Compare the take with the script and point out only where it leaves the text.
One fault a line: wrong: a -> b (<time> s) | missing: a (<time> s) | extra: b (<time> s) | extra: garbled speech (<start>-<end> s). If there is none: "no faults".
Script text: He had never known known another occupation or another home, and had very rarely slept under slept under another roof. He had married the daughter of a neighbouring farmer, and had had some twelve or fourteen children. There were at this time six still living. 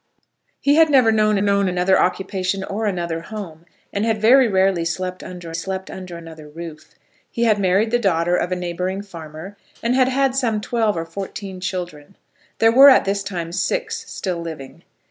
no faults